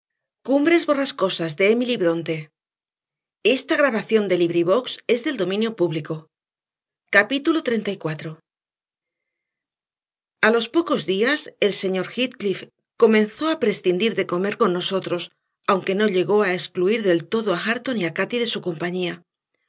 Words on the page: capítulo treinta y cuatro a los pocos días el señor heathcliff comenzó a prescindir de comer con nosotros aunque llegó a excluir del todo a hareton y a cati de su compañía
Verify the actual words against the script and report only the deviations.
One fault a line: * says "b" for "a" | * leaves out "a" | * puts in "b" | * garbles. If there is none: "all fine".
* puts in "no"